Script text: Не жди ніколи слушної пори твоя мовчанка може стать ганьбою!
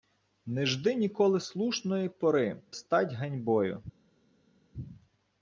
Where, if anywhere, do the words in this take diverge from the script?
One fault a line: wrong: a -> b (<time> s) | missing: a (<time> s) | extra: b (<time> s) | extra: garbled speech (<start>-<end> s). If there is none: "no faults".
missing: твоя мовчанка може (2.6 s)